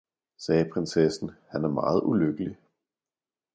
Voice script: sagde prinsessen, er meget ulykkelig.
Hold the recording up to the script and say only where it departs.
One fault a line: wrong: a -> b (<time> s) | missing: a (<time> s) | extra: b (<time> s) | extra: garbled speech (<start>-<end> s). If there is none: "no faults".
extra: han (1.5 s)